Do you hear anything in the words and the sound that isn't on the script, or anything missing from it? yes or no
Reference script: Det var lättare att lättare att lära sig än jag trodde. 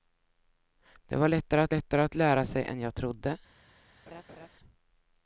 yes